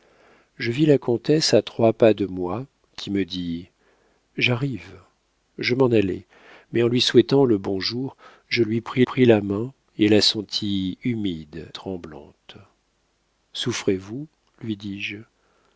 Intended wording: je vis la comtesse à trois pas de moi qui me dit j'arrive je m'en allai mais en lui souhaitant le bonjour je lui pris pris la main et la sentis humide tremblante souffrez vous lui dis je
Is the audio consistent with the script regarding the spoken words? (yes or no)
yes